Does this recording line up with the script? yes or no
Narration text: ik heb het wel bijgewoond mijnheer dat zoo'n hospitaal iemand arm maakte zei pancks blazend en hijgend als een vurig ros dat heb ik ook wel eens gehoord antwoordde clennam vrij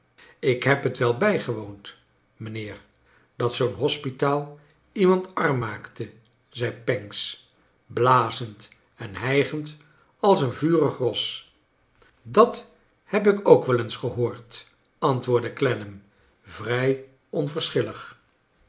yes